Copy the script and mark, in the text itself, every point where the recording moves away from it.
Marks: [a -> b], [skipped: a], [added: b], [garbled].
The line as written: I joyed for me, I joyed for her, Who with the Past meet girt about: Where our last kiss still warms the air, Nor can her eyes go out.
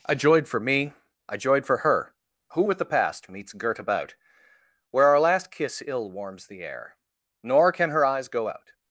I joyed for me, I joyed for her, Who with the Past [meet -> meets] girt about: Where our last kiss [still -> ill] warms the air, Nor can her eyes go out.